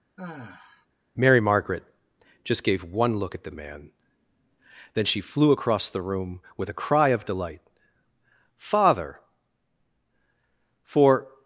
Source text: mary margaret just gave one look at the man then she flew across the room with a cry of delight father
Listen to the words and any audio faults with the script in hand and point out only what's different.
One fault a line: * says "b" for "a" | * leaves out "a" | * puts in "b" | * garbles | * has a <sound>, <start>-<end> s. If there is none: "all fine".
* has a sigh, 0.2-0.9 s
* puts in "for"